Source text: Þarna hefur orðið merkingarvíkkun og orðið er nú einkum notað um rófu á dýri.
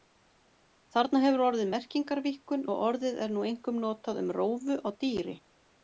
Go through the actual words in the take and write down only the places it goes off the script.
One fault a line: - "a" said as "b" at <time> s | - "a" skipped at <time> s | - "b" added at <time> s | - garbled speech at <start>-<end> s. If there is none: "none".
none